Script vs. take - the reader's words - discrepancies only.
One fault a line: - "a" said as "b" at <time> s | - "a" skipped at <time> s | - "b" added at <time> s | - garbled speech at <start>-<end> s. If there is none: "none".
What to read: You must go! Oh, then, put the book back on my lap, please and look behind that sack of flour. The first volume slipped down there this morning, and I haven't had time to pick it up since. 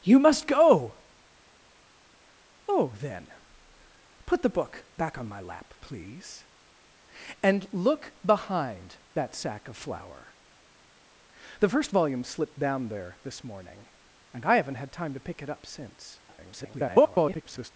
- garbled speech at 16.3-17.7 s